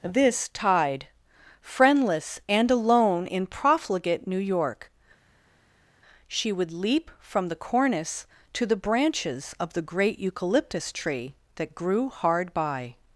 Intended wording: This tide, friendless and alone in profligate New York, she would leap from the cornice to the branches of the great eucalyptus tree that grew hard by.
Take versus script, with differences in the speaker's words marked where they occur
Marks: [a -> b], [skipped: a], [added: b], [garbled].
This tide, friendless and alone in profligate New York, she would leap from the cornice to the branches of the great eucalyptus tree that grew hard by.